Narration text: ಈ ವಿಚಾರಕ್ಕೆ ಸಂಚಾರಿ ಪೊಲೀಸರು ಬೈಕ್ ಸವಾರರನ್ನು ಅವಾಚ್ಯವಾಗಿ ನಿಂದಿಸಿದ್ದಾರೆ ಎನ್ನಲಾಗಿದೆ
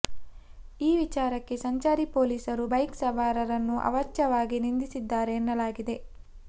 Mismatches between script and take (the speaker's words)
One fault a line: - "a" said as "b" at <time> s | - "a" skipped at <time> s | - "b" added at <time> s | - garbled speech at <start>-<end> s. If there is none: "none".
none